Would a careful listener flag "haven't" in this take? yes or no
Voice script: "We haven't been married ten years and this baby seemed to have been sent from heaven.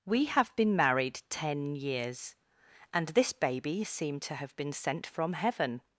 yes